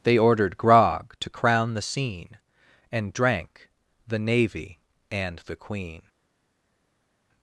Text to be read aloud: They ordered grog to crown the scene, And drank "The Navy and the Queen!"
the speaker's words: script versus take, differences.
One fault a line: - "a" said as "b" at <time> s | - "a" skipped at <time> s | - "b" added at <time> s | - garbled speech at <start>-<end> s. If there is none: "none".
none